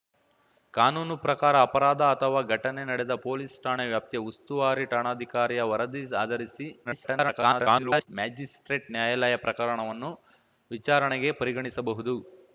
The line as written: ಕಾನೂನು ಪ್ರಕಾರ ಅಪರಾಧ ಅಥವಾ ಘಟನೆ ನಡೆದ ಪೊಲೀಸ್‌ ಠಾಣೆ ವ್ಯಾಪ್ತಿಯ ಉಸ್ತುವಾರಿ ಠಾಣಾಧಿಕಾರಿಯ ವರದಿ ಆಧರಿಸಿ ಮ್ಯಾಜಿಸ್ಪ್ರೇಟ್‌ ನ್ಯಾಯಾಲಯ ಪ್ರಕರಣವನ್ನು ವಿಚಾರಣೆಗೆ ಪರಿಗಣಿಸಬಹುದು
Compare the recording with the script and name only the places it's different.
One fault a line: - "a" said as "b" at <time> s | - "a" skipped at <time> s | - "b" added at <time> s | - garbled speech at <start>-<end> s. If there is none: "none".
- garbled speech at 6.8-8.1 s